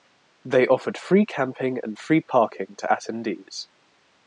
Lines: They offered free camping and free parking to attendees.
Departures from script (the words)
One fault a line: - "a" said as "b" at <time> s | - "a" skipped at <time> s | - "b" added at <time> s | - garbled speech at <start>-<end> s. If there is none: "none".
none